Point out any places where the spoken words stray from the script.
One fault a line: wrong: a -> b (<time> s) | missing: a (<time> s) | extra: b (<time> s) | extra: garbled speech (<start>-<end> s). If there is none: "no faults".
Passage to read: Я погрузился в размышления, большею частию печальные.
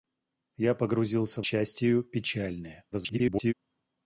missing: размышления большею (1.5 s)
extra: garbled speech (2.9-3.5 s)